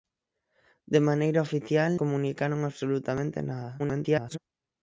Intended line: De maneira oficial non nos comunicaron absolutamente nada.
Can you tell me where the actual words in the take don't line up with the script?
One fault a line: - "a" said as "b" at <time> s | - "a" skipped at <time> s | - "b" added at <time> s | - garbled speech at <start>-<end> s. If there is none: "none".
- "non nos" skipped at 1.9 s
- garbled speech at 3.8-4.4 s